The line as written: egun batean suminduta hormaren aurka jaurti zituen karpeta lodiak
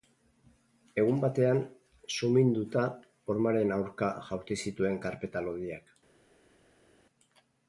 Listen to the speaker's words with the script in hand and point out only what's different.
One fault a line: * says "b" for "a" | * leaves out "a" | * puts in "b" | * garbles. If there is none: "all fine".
all fine